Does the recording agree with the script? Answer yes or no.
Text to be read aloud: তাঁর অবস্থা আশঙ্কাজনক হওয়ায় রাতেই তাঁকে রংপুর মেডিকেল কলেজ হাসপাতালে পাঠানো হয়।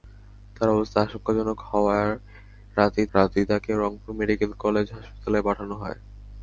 no